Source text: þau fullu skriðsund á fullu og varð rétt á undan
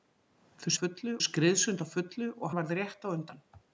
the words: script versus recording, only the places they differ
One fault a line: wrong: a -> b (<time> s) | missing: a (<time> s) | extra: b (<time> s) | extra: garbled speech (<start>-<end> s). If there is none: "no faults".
no faults